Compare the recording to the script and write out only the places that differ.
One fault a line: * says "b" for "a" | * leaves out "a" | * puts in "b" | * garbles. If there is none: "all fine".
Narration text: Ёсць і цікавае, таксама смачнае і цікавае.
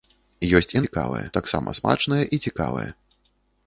all fine